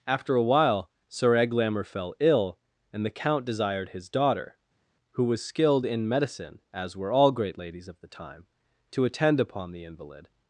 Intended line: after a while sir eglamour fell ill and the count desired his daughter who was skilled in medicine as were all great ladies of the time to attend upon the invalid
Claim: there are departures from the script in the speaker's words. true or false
false